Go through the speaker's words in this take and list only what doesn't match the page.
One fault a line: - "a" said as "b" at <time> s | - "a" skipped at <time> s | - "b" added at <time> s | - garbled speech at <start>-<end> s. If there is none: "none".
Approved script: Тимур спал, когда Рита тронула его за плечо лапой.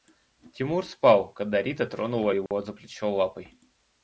none